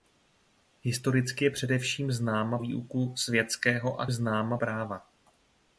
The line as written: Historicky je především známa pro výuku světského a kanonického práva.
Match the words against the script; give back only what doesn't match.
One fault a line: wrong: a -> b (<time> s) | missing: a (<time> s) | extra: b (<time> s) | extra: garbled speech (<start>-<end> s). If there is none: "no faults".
missing: pro (2.6 s)
wrong: kanonického -> známa (4.1 s)